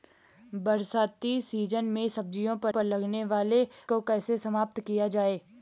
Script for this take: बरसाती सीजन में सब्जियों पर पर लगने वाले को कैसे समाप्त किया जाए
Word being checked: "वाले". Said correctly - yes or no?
yes